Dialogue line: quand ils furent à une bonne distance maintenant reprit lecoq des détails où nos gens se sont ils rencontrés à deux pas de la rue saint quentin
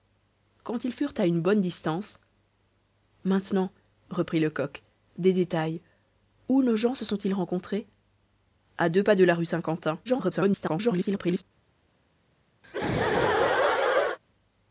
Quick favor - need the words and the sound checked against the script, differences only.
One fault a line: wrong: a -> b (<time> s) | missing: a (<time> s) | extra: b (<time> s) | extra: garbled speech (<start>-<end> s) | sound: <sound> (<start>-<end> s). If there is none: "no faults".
extra: garbled speech (10.0-11.4 s)
sound: laugh (12.6-14.2 s)